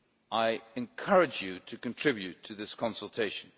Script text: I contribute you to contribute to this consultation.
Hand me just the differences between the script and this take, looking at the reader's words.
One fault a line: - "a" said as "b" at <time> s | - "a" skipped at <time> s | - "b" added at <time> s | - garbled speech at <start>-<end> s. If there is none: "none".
- "contribute" said as "encourage" at 0.8 s